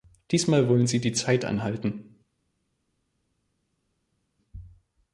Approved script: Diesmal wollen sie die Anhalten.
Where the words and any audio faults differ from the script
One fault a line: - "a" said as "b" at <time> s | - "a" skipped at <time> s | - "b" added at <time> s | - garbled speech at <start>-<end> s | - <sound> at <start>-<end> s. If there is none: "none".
- "Zeit" added at 1.1 s